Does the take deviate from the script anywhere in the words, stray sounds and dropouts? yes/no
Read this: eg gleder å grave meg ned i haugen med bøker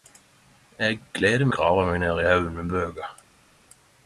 no